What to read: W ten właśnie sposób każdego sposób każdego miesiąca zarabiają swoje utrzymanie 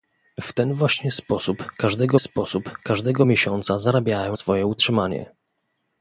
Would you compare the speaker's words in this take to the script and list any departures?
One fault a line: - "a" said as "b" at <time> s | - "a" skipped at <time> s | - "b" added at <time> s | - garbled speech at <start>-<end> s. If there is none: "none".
none